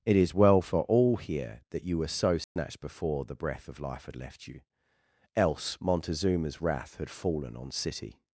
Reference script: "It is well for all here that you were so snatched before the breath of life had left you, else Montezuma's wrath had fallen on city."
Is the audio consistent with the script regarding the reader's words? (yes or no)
yes